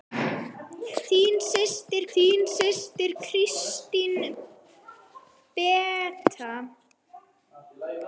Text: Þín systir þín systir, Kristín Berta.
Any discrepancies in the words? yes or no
no